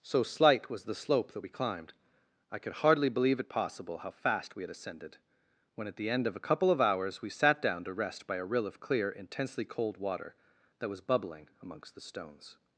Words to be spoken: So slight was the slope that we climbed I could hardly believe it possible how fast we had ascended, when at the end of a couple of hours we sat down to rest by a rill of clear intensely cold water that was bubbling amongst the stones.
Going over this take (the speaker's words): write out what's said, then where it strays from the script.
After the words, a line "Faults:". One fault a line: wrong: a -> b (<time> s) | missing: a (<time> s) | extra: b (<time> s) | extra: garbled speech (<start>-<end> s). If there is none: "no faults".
So slight was the slope that we climbed I could hardly believe it possible how fast we had ascended, when at the end of a couple of hours we sat down to rest by a rill of clear intensely cold water that was bubbling amongst the stones.
Faults:
no faults